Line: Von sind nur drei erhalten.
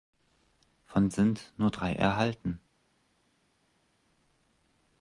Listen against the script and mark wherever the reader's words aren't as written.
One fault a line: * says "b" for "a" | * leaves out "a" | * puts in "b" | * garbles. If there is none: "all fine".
all fine